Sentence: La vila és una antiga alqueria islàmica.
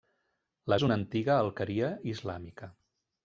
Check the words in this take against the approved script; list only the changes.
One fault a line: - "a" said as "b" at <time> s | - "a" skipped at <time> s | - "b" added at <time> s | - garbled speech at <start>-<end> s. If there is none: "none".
- "vila" skipped at 0.8 s